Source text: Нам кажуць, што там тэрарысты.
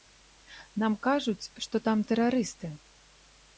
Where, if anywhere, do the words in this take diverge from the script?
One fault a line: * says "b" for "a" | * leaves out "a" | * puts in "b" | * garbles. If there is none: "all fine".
all fine